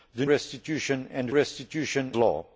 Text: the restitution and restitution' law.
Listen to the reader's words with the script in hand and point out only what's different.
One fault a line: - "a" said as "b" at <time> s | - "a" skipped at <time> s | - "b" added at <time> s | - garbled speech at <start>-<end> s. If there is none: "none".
none